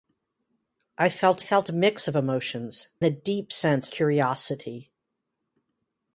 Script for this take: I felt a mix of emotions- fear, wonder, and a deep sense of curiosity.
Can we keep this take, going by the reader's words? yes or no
no